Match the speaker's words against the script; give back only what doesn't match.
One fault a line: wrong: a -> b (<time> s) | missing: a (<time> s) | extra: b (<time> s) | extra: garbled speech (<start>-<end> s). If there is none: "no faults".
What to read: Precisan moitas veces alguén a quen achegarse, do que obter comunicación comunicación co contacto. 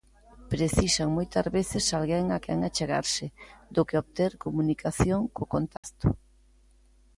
missing: comunicación (5.2 s)